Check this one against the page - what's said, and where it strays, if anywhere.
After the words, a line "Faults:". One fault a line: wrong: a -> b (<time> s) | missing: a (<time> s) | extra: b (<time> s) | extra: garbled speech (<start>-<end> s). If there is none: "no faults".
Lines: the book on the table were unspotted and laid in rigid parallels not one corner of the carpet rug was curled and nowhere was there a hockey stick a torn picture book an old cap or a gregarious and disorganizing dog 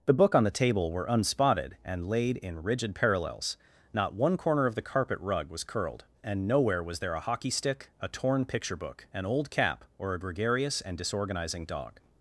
the book on the table were unspotted and laid in rigid parallels not one corner of the carpet rug was curled and nowhere was there a hockey stick a torn picture book an old cap or a gregarious and disorganizing dog
Faults:
no faults